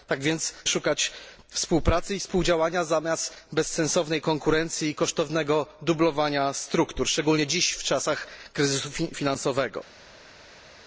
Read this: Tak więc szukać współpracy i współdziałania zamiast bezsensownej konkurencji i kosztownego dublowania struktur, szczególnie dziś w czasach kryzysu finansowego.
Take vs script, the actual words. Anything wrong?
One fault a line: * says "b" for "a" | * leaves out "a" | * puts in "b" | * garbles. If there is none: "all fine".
all fine